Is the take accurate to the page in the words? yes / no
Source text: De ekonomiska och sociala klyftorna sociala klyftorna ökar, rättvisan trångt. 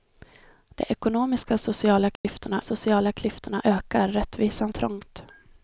yes